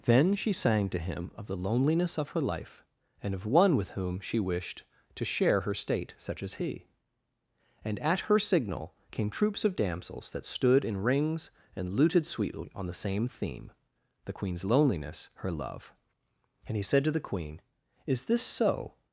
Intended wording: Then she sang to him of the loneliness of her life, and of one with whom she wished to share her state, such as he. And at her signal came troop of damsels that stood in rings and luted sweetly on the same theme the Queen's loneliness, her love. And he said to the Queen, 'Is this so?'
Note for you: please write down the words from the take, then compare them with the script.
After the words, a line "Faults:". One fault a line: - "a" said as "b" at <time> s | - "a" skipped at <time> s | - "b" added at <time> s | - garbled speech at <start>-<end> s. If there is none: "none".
Then she sang to him of the loneliness of her life, and of one with whom she wished to share her state, such as he. And at her signal came troops of damsels that stood in rings and luted sweetly on the same theme the Queen's loneliness, her love. And he said to the Queen, 'Is this so?'
Faults:
- "troop" said as "troops" at 9.3 s